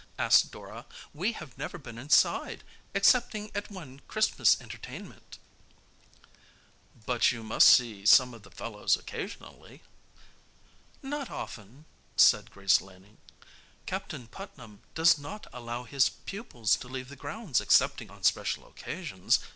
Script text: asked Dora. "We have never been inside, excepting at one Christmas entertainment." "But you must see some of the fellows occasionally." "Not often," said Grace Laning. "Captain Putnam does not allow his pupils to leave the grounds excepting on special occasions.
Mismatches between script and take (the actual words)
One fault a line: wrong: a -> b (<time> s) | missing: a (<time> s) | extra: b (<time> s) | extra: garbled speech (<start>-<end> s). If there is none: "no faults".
no faults